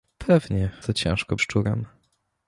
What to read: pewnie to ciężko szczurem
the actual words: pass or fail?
pass